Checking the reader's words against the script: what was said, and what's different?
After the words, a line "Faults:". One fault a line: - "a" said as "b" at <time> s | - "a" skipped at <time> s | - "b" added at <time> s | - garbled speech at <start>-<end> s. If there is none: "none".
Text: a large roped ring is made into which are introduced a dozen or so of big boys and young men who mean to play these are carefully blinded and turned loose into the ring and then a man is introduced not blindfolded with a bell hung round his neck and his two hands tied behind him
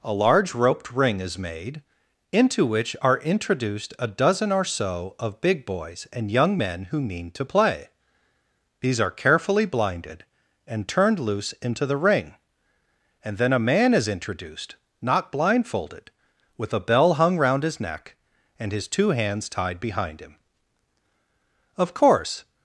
a large roped ring is made into which are introduced a dozen or so of big boys and young men who mean to play these are carefully blinded and turned loose into the ring and then a man is introduced not blindfolded with a bell hung round his neck and his two hands tied behind him of course
Faults:
- "of course" added at 21.8 s